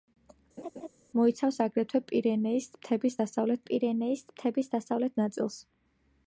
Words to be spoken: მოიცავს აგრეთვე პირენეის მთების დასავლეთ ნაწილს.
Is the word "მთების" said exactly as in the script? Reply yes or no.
yes